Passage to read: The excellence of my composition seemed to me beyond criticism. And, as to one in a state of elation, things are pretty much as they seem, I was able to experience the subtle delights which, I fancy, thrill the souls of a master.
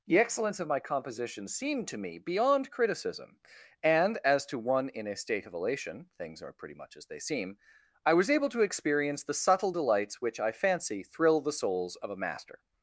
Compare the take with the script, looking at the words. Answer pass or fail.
pass